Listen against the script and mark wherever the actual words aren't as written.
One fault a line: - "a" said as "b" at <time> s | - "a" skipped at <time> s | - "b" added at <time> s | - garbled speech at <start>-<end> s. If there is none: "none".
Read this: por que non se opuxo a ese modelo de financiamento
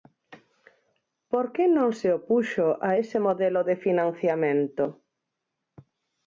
none